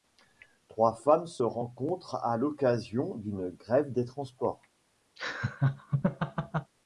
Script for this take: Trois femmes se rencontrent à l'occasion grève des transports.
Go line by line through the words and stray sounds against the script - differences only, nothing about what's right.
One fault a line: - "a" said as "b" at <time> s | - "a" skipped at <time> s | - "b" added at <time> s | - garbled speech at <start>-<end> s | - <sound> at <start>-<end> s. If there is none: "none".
- "d'une" added at 3.2 s
- laugh at 5.2-6.7 s